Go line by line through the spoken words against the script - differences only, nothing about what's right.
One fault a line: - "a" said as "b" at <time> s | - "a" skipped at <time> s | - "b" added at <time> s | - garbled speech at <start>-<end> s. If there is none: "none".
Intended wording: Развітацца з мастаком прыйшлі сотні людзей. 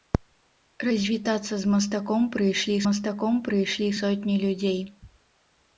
- "мастаком прыйшлі" added at 2.9 s